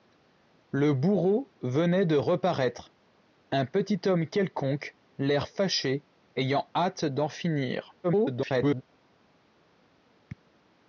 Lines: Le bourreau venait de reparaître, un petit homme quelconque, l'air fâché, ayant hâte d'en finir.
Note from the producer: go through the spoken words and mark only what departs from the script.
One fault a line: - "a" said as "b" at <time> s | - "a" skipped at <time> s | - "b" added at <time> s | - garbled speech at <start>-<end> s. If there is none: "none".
- garbled speech at 8.0-8.8 s